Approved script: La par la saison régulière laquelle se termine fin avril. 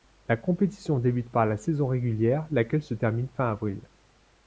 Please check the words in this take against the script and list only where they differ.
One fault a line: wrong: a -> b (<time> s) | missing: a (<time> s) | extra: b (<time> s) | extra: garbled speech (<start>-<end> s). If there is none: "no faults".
extra: compétition débute (0.3 s)